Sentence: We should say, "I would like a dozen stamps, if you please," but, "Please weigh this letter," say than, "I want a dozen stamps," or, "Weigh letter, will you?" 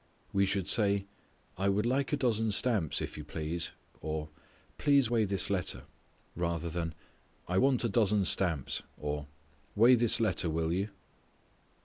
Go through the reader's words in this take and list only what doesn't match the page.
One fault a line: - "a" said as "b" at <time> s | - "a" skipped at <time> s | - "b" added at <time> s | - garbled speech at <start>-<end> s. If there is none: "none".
- "but" said as "or" at 4.0 s
- "say" said as "rather" at 6.4 s
- "this" added at 9.9 s